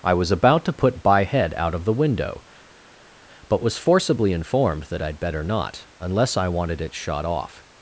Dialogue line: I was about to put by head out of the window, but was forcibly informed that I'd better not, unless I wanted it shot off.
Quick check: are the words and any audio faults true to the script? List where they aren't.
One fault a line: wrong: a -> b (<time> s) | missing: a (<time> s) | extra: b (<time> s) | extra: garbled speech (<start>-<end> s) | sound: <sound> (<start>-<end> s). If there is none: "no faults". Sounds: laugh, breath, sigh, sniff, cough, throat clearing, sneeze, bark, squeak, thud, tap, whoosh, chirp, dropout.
no faults